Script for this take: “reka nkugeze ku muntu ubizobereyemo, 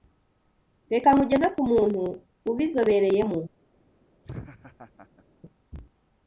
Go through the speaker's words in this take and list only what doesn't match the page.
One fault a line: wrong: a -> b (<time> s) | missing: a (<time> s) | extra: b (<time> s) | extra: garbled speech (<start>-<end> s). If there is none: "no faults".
no faults